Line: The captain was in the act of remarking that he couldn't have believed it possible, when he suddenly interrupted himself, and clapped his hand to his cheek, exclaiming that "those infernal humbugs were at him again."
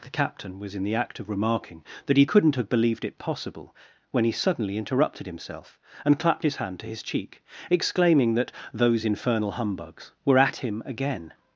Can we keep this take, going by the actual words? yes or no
yes